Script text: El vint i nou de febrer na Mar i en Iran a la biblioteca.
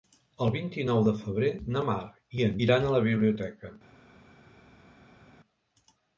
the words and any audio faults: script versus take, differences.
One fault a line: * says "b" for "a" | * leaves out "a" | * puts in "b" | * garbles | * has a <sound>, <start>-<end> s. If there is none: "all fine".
all fine